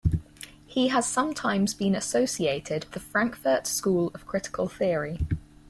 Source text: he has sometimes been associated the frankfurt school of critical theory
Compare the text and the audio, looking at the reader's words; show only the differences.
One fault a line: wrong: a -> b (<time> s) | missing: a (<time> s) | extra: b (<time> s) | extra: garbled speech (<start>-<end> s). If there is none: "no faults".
no faults